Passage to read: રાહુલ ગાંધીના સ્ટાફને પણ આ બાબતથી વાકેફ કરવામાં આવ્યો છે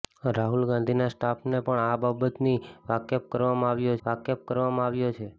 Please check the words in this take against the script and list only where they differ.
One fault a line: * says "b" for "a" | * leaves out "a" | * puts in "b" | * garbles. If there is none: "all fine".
* puts in "વાકેફ કરવામાં આવ્યો"